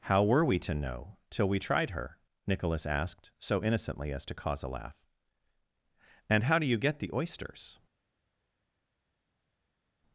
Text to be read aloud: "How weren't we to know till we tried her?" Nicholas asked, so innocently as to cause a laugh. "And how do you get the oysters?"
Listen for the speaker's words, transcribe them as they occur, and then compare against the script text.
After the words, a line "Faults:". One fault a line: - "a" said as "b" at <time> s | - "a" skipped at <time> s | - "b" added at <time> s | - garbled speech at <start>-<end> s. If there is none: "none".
"How were we to know till we tried her?" Nicholas asked, so innocently as to cause a laugh. "And how do you get the oysters?"
Faults:
- "weren't" said as "were" at 0.2 s